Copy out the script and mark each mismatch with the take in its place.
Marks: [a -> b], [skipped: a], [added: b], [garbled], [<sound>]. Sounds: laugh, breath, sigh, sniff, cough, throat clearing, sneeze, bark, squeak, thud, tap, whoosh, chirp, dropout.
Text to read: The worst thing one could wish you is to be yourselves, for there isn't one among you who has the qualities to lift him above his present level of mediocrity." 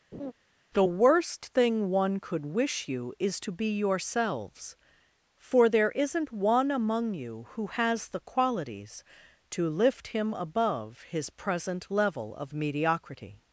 [laugh] The worst thing one could wish you is to be yourselves, for there isn't one among you who has the qualities to lift him above his present level of mediocrity."